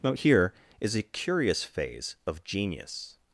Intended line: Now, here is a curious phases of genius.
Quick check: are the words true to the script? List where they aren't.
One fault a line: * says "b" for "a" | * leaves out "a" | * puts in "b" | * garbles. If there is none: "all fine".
* says "phase" for "phases"